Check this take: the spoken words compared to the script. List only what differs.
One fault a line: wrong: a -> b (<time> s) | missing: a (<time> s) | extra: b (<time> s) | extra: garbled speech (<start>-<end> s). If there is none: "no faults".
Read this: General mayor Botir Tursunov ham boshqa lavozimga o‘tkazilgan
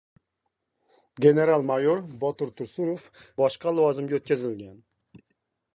missing: ham (3.0 s)